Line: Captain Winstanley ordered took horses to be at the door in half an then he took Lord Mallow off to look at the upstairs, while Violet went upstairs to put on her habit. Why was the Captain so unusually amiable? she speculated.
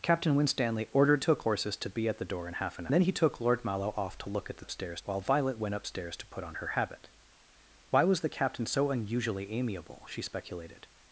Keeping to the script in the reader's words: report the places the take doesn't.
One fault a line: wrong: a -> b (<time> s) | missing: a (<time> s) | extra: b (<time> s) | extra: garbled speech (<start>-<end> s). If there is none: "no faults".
no faults